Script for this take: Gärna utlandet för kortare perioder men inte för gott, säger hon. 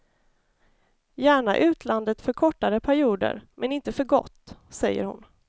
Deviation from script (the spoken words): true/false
false